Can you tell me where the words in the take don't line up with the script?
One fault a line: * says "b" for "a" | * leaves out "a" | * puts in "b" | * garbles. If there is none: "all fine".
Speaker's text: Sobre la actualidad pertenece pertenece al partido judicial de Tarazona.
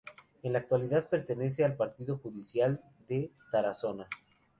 * says "En" for "Sobre"
* leaves out "pertenece"